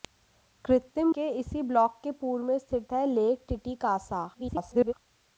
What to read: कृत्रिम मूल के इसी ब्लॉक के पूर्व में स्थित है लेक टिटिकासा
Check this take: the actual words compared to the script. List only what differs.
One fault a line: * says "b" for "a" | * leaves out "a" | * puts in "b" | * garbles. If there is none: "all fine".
* leaves out "मूल"
* garbles